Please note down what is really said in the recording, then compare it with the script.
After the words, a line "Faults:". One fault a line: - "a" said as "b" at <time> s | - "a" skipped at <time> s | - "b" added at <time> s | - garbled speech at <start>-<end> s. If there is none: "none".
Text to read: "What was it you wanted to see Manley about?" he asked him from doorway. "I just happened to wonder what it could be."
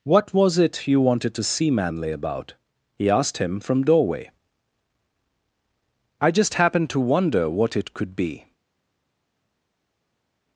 "What was it you wanted to see Manley about?" he asked him from doorway. "I just happened to wonder what it could be."
Faults:
none